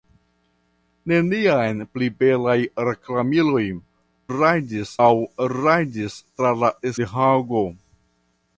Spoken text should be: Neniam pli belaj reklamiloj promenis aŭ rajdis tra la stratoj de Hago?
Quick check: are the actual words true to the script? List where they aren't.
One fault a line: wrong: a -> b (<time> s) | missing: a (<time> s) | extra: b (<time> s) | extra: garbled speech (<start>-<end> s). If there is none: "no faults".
wrong: promenis -> rajdis (4.3 s)
missing: stratoj (6.7 s)